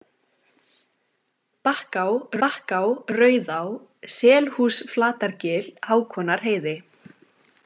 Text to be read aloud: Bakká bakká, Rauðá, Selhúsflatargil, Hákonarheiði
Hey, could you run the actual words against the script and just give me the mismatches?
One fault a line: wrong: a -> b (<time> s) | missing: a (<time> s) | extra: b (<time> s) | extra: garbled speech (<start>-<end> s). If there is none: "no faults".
no faults